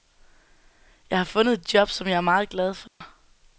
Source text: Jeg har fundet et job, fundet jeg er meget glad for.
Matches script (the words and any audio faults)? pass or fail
fail